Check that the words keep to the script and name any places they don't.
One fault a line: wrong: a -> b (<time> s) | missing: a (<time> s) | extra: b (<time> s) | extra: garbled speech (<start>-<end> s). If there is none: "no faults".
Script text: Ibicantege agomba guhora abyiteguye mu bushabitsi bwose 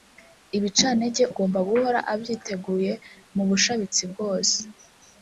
no faults